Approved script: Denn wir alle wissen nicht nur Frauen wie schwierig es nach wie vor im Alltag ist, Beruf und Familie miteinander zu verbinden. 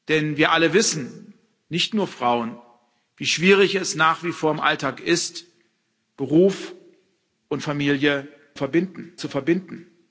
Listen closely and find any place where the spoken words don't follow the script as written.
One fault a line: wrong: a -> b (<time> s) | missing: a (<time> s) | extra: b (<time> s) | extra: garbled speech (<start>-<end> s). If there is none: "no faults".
wrong: miteinander -> verbinden (8.5 s)